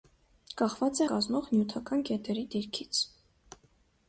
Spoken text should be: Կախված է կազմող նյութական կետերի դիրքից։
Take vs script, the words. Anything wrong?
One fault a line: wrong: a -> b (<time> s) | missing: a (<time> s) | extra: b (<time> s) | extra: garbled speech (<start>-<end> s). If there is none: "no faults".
no faults